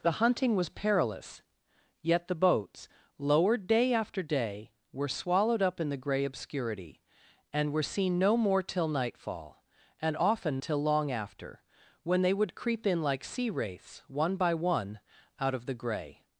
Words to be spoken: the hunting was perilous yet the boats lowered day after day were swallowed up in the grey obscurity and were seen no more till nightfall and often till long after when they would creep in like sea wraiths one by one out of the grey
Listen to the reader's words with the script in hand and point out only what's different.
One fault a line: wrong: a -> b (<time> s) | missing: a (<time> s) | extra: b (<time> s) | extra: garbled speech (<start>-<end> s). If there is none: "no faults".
no faults